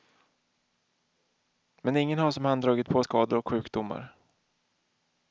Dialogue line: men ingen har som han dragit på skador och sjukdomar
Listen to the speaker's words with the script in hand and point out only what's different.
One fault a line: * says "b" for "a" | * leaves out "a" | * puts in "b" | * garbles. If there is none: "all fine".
all fine